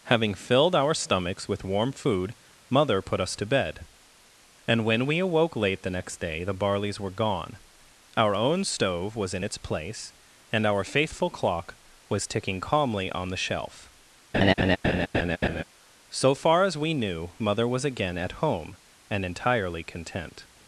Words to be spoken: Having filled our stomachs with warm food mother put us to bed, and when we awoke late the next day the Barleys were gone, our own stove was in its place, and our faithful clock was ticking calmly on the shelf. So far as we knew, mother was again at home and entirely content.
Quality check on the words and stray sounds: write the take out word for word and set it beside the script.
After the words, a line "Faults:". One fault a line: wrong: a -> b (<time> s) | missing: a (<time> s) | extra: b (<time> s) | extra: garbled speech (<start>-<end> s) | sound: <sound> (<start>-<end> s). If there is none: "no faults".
Having filled our stomachs with warm food mother put us to bed, and when we awoke late the next day the Barleys were gone, our own stove was in its place, and our faithful clock was ticking calmly on the shelf. So far as we knew, mother was again at home and entirely content.
Faults:
sound: laugh (14.3-15.6 s)